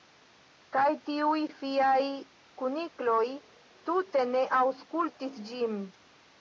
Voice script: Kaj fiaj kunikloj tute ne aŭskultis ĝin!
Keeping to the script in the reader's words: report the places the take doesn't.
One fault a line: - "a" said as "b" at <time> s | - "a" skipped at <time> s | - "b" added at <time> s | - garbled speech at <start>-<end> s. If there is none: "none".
- "tiuj" added at 1.1 s